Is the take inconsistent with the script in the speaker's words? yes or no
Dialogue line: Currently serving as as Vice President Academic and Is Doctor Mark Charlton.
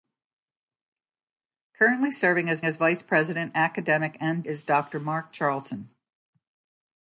no